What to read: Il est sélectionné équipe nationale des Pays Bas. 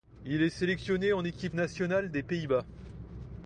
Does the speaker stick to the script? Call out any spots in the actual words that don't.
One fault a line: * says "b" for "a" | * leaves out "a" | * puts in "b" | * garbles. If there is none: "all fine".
* puts in "en"